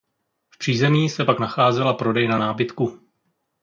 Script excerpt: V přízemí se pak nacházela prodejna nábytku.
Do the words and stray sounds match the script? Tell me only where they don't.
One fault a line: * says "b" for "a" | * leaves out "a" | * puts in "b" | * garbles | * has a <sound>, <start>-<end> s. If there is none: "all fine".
all fine